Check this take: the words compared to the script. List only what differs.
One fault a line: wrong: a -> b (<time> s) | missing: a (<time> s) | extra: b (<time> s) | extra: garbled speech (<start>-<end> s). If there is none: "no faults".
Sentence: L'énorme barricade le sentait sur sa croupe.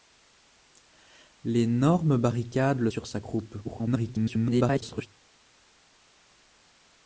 missing: sentait (2.9 s)
extra: garbled speech (3.6-5.1 s)